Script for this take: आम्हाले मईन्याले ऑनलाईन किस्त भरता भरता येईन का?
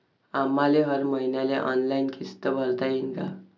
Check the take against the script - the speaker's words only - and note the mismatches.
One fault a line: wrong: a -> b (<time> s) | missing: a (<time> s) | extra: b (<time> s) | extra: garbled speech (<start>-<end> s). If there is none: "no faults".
extra: हर (0.8 s)
missing: भरता (2.9 s)